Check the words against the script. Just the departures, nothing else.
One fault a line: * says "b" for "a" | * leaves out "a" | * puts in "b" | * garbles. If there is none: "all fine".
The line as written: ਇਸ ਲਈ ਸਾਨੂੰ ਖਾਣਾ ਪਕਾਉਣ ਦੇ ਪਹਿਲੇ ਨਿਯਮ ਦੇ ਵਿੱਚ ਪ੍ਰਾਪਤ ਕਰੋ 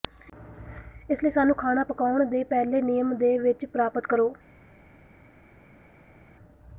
all fine